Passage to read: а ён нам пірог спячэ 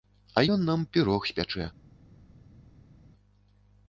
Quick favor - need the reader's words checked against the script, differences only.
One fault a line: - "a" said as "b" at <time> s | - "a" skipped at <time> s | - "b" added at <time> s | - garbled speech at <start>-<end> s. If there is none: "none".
none